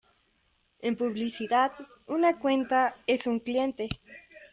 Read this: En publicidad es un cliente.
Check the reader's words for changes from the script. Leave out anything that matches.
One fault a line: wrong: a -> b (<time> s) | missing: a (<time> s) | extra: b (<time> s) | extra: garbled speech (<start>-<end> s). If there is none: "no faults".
extra: una cuenta (2.1 s)